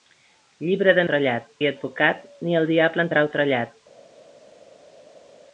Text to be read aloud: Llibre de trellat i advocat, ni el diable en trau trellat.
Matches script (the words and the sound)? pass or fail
pass